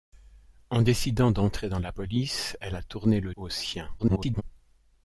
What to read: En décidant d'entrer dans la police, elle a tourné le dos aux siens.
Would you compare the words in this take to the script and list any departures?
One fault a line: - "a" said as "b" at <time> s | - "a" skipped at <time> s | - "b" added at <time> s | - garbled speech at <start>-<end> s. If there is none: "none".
- "dos" skipped at 3.4 s
- garbled speech at 4.0-4.4 s